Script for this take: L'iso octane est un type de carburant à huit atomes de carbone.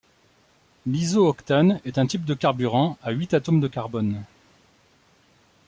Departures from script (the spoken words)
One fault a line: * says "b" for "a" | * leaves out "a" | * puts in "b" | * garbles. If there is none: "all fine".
all fine